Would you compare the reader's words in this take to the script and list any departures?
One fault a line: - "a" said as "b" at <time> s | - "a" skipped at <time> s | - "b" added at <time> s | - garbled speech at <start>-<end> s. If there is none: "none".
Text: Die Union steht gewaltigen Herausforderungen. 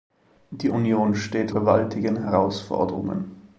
none